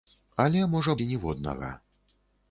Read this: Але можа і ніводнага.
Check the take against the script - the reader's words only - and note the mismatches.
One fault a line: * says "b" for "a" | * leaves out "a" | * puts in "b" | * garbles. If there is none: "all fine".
all fine